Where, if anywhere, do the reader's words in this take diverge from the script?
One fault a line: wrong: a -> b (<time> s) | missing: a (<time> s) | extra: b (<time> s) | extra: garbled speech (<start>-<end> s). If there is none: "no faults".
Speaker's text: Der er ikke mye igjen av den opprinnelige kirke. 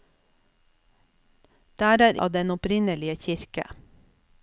missing: ikke mye igjen (2.2 s)